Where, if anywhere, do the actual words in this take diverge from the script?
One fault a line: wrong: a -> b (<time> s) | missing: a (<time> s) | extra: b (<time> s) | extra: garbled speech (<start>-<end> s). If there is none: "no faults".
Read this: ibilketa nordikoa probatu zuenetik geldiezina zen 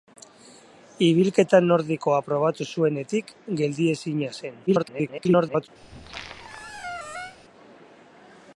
extra: garbled speech (4.7-5.7 s)